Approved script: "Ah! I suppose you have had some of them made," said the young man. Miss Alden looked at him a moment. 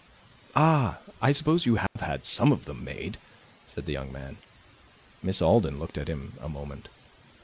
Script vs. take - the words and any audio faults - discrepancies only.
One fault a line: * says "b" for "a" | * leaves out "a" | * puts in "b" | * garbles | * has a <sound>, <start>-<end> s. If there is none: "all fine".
* has a dropout, 1.9-2.0 s